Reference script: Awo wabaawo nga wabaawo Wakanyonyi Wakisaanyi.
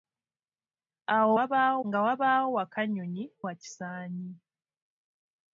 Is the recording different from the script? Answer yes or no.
no